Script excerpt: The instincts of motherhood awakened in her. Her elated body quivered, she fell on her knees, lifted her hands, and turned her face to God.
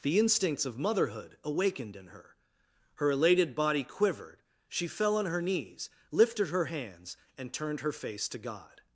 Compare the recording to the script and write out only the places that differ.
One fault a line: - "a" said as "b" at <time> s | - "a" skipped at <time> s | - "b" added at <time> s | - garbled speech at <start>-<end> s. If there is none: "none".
none